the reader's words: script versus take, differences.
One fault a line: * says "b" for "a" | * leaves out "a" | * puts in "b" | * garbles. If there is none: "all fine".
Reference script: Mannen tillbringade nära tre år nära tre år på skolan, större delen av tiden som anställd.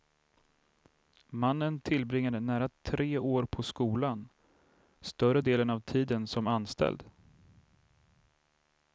* leaves out "nära tre år"